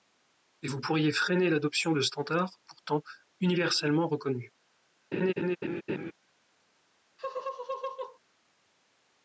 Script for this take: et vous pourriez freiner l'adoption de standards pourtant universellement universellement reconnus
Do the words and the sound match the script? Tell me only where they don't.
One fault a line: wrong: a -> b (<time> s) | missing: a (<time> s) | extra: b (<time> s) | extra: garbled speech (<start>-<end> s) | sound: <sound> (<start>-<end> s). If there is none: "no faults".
missing: universellement (4.1 s)
sound: laugh (5.1-6.1 s)
sound: laugh (7.2-8.2 s)